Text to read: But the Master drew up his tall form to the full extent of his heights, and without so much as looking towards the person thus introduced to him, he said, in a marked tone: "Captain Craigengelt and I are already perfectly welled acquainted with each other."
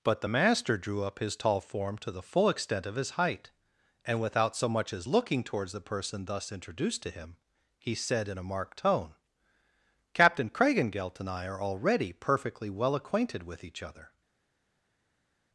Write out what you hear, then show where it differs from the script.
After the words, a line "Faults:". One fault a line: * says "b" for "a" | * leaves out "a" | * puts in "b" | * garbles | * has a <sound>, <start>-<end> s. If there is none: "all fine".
But the Master drew up his tall form to the full extent of his height, and without so much as looking towards the person thus introduced to him, he said, in a marked tone: "Captain Craigengelt and I are already perfectly well acquainted with each other."
Faults:
* says "height" for "heights"
* says "well" for "welled"